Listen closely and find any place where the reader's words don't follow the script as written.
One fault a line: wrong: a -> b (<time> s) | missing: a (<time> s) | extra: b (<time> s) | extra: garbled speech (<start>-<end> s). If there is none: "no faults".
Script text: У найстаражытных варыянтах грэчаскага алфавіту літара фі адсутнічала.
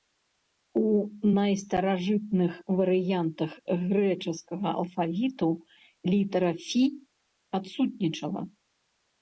no faults